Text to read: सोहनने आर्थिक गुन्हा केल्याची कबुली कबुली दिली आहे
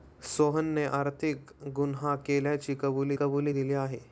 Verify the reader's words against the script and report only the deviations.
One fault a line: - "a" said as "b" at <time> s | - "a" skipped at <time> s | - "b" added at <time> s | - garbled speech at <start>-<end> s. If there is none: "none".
none